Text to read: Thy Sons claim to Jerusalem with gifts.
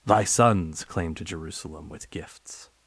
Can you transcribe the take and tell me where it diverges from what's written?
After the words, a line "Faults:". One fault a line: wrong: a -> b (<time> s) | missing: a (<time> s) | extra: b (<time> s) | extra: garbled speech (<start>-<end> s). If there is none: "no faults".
Thy Sons claim to Jerusalem with gifts.
Faults:
no faults